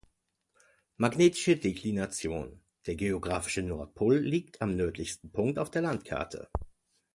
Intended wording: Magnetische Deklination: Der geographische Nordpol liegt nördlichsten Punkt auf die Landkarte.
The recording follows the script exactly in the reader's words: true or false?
false